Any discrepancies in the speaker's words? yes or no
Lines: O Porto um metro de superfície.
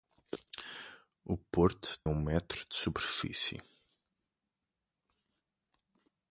no